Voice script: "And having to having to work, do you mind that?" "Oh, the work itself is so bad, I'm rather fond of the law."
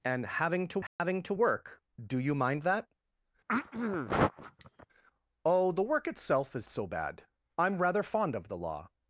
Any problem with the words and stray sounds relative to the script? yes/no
yes